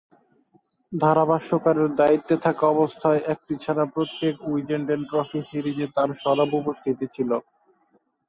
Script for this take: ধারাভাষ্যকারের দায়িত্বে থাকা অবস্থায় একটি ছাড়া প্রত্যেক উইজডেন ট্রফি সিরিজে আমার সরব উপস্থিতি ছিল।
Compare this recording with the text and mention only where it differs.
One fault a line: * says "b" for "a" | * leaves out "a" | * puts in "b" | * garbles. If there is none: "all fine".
* says "তার" for "আমার"